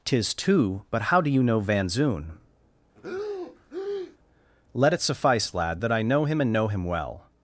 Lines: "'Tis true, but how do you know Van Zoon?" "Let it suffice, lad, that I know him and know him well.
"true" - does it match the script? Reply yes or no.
no